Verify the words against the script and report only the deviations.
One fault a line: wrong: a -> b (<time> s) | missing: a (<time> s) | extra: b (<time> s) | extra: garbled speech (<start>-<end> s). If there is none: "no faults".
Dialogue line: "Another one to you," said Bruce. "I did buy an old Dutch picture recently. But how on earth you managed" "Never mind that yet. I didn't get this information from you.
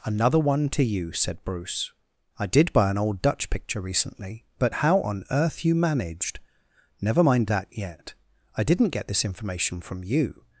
no faults